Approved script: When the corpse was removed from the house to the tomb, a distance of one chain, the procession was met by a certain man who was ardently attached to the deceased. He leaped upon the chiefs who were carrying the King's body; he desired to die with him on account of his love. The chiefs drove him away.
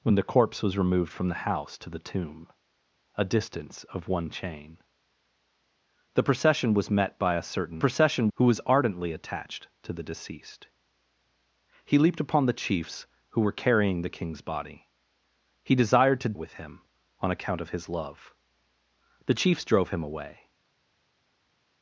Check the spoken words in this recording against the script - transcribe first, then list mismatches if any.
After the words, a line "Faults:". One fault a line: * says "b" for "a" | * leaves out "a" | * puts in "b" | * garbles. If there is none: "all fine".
When the corpse was removed from the house to the tomb, a distance of one chain, the procession was met by a certain procession who was ardently attached to the deceased. He leaped upon the chiefs who were carrying the King's body; he desired to with him on account of his love. The chiefs drove him away.
Faults:
* says "procession" for "man"
* leaves out "die"